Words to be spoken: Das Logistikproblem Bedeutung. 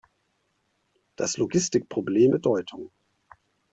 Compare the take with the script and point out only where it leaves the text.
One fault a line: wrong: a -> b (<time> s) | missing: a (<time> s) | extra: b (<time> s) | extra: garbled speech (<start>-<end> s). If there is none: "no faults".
no faults